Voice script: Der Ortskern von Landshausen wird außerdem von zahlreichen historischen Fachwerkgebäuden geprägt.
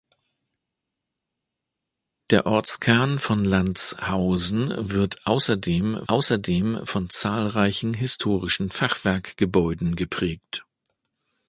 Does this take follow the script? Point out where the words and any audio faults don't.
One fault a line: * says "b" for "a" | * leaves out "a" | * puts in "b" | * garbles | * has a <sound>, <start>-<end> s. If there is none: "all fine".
* puts in "außerdem"